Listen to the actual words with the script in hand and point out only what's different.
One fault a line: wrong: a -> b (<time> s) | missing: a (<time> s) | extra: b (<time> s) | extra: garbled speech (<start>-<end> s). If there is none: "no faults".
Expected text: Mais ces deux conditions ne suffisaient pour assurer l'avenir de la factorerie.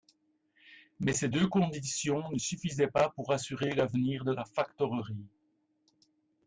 extra: pas (2.9 s)